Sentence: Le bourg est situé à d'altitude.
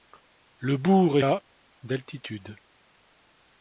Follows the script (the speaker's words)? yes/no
no